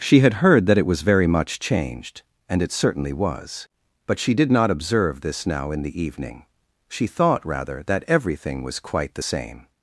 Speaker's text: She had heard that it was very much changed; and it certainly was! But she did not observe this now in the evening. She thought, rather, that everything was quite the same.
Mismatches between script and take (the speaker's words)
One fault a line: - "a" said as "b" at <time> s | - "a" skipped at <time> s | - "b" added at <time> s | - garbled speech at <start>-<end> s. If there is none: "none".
none